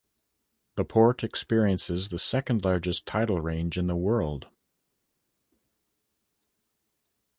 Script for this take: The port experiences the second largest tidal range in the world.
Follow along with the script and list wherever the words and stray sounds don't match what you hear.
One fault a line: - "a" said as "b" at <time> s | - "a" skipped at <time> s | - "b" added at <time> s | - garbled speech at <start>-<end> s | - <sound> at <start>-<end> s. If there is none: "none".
none